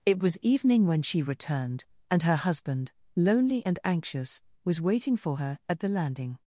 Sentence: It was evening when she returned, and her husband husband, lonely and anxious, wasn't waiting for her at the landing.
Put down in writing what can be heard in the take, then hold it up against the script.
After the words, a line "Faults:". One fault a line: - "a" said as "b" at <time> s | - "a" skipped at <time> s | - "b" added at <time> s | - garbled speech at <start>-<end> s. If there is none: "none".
It was evening when she returned, and her husband, lonely and anxious, was waiting for her at the landing.
Faults:
- "husband" skipped at 2.9 s
- "wasn't" said as "was" at 4.6 s